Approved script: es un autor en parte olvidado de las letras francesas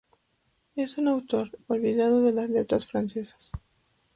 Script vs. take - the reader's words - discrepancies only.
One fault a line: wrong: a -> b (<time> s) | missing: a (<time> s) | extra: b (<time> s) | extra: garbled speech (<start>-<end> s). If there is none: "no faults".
missing: en parte (1.5 s)